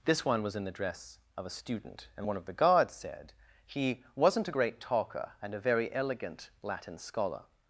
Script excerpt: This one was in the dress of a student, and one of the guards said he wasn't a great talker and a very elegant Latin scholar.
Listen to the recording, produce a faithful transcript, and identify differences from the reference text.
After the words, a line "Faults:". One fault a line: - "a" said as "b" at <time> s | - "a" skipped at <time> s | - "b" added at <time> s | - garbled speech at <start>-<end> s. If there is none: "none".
This one was in the dress of a student, and one of the guards said he wasn't a great talker and a very elegant Latin scholar.
Faults:
none